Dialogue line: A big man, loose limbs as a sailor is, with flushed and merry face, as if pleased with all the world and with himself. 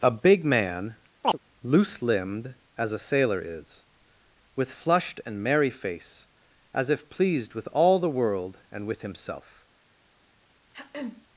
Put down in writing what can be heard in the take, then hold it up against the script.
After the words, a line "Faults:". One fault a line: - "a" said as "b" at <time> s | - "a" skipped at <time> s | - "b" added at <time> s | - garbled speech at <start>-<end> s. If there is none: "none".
A big man, loose limbed as a sailor is, with flushed and merry face, as if pleased with all the world and with himself.
Faults:
- "limbs" said as "limbed" at 2.0 s